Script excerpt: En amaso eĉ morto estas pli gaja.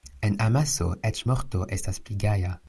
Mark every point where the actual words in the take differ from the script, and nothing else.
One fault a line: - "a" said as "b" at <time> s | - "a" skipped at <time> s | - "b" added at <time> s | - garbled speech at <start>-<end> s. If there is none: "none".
none